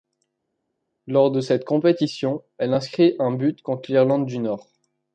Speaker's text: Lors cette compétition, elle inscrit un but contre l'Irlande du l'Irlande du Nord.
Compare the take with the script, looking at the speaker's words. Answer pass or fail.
fail